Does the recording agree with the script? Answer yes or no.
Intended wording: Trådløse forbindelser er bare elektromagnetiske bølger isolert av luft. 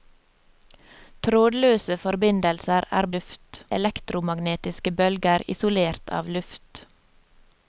no